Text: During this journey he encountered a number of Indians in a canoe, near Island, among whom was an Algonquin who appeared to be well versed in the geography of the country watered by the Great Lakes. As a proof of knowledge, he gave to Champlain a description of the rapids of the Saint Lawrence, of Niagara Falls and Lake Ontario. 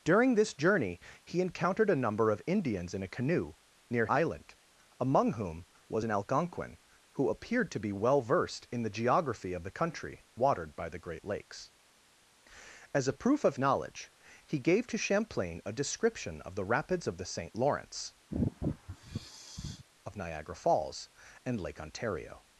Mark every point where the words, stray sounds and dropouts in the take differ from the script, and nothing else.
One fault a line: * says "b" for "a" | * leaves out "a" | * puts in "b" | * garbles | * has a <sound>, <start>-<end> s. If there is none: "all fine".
* has a sigh, 18.3-19.8 s